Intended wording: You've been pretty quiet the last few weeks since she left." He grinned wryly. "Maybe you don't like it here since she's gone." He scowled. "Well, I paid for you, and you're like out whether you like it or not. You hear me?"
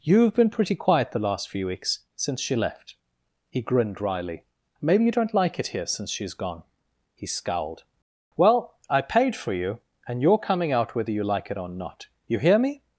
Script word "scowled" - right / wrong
right